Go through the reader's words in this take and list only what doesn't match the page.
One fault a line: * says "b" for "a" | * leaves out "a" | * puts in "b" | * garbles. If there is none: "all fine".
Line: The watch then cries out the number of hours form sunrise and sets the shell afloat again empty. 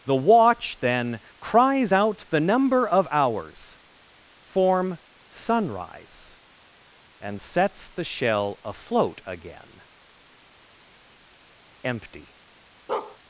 all fine